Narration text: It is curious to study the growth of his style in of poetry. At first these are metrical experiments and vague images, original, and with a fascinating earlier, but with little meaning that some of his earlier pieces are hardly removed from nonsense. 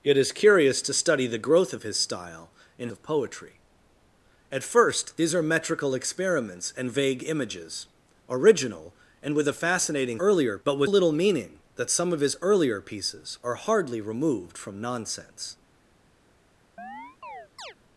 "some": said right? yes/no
yes